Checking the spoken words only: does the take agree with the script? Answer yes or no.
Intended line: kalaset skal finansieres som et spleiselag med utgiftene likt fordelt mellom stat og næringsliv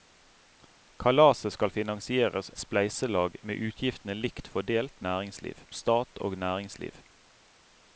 no